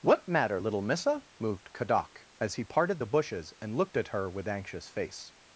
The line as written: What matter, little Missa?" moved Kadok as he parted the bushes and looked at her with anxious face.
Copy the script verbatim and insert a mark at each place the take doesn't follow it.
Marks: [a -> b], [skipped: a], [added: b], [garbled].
What matter, little Missa?" moved Kadok as he parted the bushes and looked at her with anxious face.